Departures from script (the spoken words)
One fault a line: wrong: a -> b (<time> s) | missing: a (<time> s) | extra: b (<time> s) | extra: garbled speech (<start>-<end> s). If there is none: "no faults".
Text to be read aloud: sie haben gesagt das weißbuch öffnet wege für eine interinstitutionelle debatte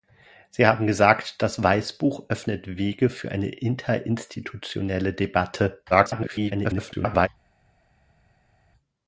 extra: garbled speech (5.9-7.3 s)